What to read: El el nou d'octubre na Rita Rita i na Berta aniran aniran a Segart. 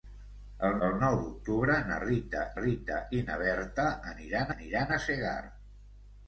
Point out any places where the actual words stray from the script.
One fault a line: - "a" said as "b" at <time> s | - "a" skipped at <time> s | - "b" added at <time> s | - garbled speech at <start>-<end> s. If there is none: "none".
none